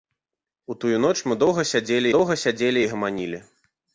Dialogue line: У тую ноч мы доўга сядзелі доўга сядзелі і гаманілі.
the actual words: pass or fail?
pass